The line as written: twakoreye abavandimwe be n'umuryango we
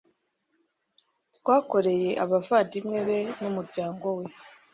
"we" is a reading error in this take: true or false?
false